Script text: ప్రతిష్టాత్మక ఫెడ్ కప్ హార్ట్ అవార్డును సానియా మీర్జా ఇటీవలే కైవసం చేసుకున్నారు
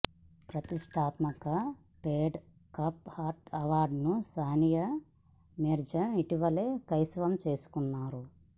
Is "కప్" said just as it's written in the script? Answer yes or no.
yes